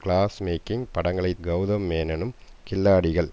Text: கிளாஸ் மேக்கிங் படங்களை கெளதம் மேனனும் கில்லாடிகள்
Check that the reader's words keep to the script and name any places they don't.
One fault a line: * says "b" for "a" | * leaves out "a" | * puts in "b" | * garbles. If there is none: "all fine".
all fine